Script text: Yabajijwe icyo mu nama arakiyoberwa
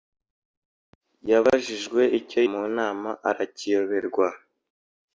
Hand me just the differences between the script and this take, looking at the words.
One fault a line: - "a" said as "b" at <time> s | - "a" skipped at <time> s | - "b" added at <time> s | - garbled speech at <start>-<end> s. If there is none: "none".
none